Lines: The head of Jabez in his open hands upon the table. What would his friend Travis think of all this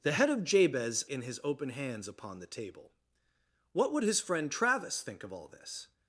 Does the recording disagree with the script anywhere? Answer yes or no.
no